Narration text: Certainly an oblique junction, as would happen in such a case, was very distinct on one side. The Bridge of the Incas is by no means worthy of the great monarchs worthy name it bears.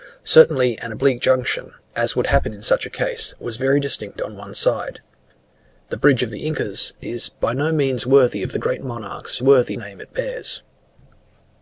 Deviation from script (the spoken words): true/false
false